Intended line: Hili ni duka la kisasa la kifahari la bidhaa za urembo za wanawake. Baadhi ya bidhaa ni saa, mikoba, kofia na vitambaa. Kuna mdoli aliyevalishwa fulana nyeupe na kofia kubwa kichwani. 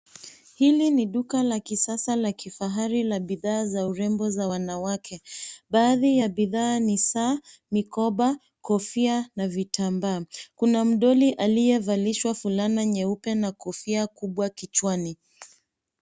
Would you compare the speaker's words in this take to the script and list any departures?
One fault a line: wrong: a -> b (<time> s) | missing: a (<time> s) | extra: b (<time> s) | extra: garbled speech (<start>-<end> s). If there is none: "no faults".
no faults